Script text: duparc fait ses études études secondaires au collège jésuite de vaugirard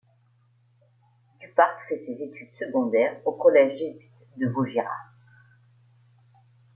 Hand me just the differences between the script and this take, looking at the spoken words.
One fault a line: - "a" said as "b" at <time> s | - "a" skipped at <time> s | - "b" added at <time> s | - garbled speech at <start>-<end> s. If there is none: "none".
- "études" skipped at 2.5 s